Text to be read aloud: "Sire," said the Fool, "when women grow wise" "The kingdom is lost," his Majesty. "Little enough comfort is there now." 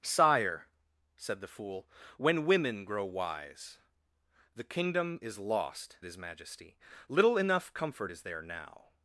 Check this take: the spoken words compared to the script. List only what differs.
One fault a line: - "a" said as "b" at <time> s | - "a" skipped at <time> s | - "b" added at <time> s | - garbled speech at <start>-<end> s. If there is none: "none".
none